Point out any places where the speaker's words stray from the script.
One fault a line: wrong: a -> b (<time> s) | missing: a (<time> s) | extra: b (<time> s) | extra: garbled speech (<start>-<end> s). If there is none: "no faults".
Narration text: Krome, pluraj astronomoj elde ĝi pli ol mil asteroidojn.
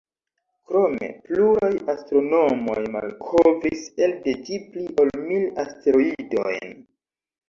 extra: malkovris (3.0 s)